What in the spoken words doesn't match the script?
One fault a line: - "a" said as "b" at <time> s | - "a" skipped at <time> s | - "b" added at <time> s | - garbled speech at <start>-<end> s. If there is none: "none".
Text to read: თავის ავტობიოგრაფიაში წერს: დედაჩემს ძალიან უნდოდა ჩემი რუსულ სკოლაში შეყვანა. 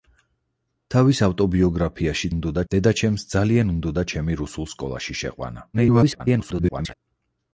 - "წერს" said as "უნდოდა" at 2.3 s
- garbled speech at 5.7-6.9 s